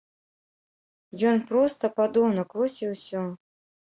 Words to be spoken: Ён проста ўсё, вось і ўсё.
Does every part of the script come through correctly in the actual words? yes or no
no